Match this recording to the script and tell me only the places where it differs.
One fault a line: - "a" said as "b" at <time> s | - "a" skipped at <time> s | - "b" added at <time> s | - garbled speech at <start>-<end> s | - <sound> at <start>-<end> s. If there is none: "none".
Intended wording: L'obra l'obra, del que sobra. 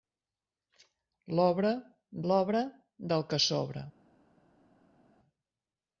none